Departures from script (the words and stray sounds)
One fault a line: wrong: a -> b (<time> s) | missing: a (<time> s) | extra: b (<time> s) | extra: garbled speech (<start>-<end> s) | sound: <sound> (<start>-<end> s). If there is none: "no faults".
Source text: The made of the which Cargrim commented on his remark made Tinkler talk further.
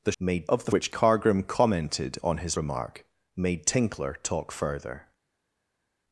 no faults